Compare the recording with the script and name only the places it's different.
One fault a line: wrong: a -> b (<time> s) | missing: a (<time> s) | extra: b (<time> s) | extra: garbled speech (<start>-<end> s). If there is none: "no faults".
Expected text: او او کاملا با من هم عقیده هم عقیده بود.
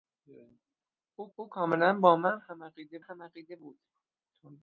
no faults